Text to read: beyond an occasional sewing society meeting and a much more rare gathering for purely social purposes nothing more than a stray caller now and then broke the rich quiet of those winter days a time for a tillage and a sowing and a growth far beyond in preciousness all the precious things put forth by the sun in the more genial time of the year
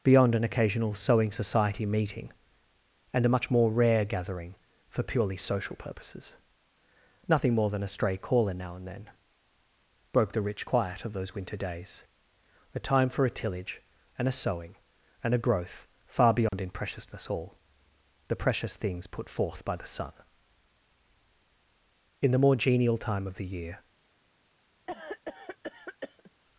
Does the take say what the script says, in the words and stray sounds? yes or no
no